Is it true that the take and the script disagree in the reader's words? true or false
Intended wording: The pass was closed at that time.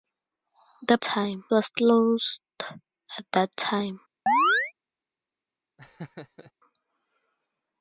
true